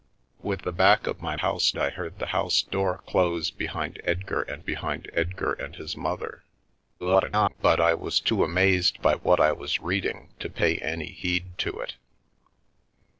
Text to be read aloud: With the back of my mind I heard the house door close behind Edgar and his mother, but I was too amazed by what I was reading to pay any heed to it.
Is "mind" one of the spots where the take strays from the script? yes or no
yes